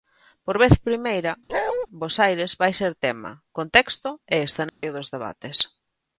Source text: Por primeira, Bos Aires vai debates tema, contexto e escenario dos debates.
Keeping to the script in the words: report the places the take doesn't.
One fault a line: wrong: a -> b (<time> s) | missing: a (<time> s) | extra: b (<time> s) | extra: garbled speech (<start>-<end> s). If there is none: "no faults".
extra: vez (0.6 s)
wrong: debates -> ser (2.8 s)